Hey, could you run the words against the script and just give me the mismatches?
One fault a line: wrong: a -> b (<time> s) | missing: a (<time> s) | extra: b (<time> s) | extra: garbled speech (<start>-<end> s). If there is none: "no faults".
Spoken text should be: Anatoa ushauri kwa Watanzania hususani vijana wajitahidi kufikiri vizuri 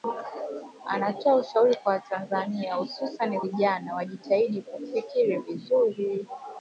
no faults